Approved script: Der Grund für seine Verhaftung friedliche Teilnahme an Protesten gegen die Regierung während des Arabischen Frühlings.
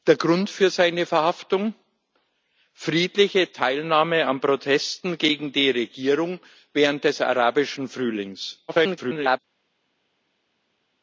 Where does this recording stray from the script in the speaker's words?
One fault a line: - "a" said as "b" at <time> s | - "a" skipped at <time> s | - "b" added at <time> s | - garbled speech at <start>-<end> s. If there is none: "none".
- garbled speech at 8.7-9.4 s